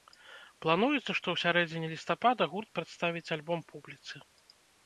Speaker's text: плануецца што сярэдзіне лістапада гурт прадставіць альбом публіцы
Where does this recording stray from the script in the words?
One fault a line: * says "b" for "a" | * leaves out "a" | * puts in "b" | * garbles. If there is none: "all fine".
* puts in "ў"